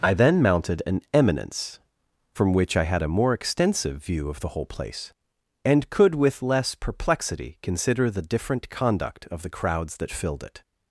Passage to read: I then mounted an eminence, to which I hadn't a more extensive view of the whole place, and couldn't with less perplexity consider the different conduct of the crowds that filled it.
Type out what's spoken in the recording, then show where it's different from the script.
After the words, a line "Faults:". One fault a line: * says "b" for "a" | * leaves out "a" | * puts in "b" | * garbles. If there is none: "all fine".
I then mounted an eminence, from which I had a more extensive view of the whole place, and could with less perplexity consider the different conduct of the crowds that filled it.
Faults:
* says "from" for "to"
* says "had" for "hadn't"
* says "could" for "couldn't"